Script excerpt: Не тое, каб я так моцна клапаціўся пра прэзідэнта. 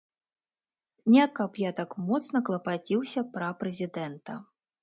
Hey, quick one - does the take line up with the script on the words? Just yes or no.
no